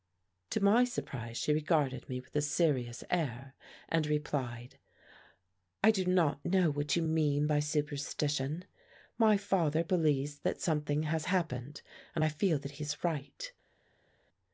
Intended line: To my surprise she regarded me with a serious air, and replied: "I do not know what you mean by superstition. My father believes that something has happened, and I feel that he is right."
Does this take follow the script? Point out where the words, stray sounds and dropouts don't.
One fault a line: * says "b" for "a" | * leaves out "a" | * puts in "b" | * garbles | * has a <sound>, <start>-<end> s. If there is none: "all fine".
all fine